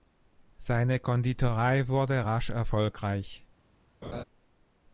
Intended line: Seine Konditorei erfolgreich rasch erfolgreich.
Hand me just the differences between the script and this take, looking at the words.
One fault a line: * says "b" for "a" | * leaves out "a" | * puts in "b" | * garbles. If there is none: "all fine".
* says "wurde" for "erfolgreich"